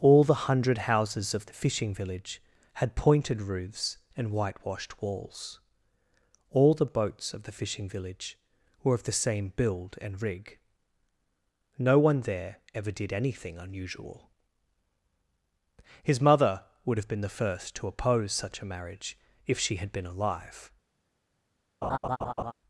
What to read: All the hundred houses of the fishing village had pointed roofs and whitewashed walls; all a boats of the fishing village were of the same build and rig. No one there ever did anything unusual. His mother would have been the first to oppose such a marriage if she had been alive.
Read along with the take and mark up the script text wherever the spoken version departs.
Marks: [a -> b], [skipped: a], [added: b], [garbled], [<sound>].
All the hundred houses of the fishing village had pointed roofs and whitewashed walls; all [a -> the] boats of the fishing village were of the same build and rig. No one there ever did anything unusual. His mother would have been the first to oppose such a marriage if she had been alive. [laugh]